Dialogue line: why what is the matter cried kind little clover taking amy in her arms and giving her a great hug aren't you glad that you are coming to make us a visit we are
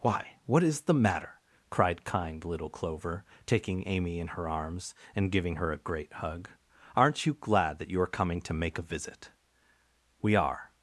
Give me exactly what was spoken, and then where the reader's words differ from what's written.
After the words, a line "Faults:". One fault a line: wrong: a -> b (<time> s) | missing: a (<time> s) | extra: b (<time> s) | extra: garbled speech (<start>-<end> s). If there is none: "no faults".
why what is the matter cried kind little clover taking amy in her arms and giving her a great hug aren't you glad that you are coming to make a visit we are
Faults:
missing: us (8.8 s)